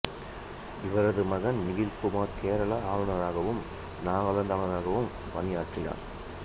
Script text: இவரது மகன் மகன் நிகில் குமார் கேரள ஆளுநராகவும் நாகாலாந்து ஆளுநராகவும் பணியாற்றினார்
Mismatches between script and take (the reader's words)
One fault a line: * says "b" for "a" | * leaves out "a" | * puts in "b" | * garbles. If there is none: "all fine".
* leaves out "மகன்"